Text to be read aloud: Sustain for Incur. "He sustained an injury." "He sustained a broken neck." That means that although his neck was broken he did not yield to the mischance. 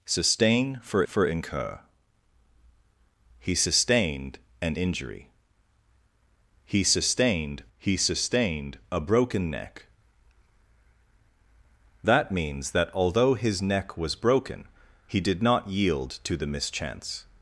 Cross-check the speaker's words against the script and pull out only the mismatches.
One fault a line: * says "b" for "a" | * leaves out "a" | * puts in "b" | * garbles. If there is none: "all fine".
* puts in "for"
* puts in "he sustained"